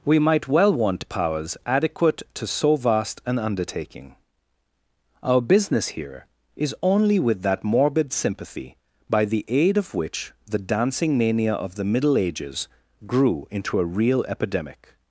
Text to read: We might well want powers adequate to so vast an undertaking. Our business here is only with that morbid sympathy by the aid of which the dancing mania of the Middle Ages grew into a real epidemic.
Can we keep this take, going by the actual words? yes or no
yes